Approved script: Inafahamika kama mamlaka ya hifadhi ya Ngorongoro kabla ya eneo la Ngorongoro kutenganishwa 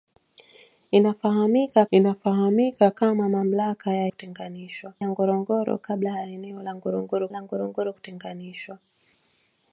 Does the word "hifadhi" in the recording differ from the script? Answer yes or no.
yes